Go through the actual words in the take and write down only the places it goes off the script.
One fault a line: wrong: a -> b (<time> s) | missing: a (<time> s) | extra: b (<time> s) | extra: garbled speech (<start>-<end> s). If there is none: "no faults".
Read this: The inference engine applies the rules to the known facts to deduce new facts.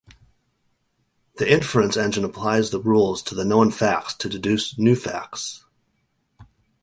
no faults